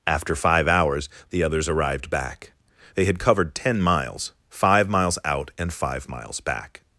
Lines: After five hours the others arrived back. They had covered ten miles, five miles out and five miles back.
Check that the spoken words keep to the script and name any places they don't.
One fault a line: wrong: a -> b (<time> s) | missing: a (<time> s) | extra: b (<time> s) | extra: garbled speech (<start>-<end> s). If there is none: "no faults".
no faults